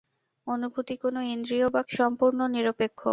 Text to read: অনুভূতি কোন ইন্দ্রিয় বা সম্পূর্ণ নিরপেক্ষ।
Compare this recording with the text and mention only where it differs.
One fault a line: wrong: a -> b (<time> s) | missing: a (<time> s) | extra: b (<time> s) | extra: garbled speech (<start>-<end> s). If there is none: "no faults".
no faults